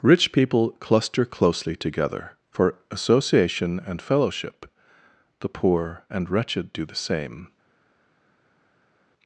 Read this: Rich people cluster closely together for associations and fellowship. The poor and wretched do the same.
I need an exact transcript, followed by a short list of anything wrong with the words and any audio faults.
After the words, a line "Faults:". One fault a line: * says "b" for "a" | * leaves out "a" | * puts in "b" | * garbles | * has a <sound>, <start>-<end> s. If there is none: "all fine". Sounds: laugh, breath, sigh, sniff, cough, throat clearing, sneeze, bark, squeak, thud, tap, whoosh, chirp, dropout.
Rich people cluster closely together for association and fellowship. The poor and wretched do the same.
Faults:
* says "association" for "associations"